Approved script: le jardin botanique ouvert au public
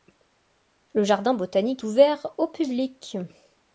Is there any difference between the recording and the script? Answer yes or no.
no